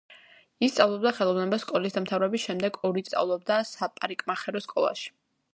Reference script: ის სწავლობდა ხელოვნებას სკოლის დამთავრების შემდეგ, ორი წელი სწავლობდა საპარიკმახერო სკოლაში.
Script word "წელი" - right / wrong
wrong